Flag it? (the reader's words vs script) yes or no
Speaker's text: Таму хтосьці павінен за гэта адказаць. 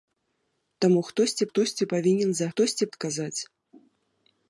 yes